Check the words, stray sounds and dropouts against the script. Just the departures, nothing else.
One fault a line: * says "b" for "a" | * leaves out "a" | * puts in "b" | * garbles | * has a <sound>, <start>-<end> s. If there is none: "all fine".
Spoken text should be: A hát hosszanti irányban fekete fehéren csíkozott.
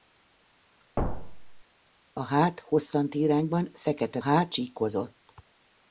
* has a thud, 1.0-1.6 s
* says "hát" for "fehéren"